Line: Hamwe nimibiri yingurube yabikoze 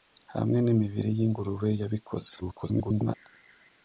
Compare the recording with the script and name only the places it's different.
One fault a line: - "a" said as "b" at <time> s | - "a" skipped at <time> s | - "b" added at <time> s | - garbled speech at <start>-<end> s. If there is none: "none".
- garbled speech at 2.4-3.1 s